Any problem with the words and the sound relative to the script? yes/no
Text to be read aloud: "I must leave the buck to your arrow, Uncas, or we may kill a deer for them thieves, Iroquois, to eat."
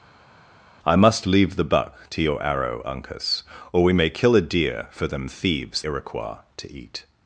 no